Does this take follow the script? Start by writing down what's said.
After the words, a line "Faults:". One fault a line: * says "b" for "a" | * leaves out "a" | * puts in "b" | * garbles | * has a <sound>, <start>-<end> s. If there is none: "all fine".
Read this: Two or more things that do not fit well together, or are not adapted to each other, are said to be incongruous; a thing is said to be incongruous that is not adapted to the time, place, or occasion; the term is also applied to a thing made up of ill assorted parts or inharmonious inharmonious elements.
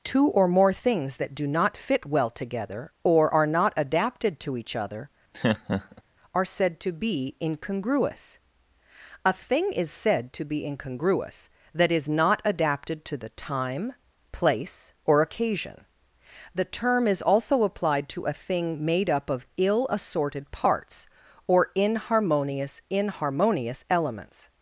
Two or more things that do not fit well together, or are not adapted to each other, are said to be incongruous; a thing is said to be incongruous that is not adapted to the time, place, or occasion; the term is also applied to a thing made up of ill assorted parts or inharmonious inharmonious elements.
Faults:
* has a laugh, 5.3-6.0 s